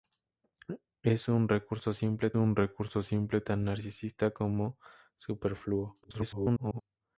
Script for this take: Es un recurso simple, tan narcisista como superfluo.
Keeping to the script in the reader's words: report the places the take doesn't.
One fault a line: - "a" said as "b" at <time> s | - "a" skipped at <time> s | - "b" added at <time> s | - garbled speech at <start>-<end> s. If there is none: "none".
- "un recurso simple" added at 2.3 s
- garbled speech at 6.0-6.8 s